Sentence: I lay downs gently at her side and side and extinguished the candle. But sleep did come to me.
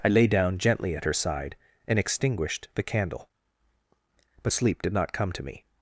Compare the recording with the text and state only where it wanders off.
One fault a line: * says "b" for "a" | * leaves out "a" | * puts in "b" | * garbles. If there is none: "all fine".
* says "down" for "downs"
* leaves out "side and"
* puts in "not"